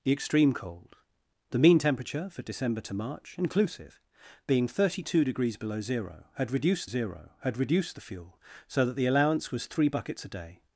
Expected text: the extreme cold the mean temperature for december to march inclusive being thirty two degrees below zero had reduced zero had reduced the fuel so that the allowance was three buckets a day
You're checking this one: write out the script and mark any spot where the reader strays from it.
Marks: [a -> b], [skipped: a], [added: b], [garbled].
the extreme cold the mean temperature for december to march inclusive being thirty two degrees below zero had reduced zero had reduced the fuel so that the allowance was three buckets a day